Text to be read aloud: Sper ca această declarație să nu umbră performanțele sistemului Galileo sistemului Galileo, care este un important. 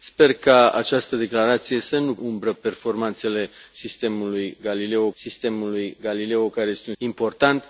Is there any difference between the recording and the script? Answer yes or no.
no